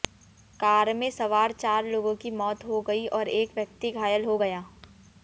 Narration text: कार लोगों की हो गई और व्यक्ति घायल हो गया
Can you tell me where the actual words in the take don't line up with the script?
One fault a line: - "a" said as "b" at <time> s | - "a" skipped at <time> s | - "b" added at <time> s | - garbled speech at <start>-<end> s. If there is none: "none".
- "में सवार चार" added at 0.9 s
- "मौत" added at 2.3 s
- "एक" added at 3.3 s